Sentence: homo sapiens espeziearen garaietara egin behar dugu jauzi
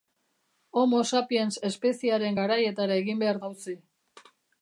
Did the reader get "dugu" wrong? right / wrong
wrong